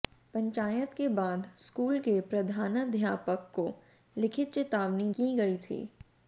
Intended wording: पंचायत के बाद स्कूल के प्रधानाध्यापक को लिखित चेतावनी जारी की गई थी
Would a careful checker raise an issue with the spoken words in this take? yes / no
yes